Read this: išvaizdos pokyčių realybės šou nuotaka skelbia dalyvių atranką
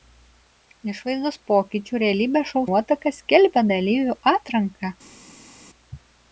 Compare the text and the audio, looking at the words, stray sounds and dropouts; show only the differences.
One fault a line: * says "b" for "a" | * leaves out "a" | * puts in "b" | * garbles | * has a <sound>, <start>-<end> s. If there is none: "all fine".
all fine